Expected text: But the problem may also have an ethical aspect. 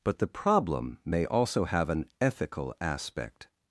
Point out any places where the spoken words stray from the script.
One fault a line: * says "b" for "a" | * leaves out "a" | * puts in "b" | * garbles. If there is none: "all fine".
all fine